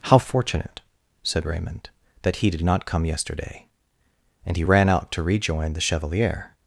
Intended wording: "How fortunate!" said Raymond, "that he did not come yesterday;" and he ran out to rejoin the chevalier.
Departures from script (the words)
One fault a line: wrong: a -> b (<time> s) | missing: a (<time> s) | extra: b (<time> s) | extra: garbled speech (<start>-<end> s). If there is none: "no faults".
no faults